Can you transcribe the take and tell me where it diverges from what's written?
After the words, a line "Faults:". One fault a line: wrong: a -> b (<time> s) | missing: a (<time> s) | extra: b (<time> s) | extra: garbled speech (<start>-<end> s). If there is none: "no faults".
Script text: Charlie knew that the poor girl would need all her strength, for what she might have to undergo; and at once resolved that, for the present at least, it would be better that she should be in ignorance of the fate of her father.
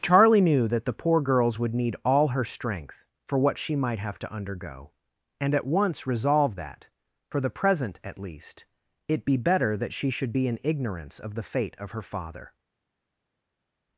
Charlie knew that the poor girls would need all her strength, for what she might have to undergo; and at once resolved that, for the present at least, it be better that she should be in ignorance of the fate of her father.
Faults:
wrong: girl -> girls (1.2 s)
missing: would (9.2 s)